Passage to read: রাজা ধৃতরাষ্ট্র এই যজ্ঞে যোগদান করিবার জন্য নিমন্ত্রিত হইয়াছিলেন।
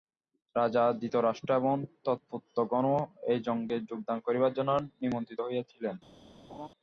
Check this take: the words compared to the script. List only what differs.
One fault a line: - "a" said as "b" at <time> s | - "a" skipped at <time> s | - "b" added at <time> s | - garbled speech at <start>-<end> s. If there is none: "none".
- "এবং তৎপুত্রগণও" added at 1.6 s